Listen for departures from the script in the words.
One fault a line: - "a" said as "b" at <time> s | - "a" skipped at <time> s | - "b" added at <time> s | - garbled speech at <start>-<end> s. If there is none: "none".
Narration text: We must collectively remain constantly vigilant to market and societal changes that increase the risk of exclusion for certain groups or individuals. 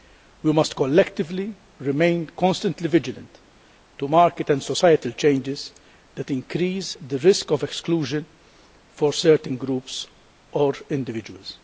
none